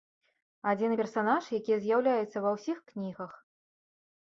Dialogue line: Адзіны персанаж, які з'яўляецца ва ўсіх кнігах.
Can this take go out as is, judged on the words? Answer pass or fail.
pass